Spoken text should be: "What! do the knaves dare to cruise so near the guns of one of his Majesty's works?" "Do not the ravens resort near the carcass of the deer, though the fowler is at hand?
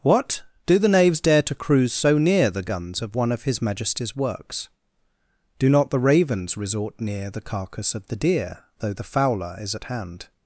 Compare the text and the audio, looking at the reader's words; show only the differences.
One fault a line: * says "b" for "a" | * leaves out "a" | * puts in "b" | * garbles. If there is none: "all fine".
all fine